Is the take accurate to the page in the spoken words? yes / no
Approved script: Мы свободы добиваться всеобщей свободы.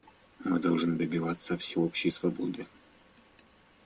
no